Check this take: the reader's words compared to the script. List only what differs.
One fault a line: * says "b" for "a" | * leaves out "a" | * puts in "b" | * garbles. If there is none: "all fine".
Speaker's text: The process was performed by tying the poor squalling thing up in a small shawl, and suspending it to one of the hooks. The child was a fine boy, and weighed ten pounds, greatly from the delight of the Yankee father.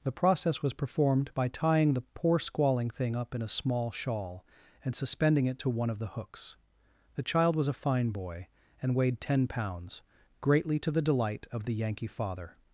* says "to" for "from"